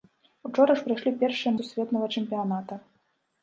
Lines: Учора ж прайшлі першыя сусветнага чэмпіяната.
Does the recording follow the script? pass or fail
pass